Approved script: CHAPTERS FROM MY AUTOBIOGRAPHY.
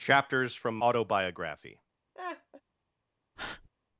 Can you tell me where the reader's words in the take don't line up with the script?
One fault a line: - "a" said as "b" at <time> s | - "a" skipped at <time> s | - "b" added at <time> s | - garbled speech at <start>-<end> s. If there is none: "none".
- "MY" skipped at 0.8 s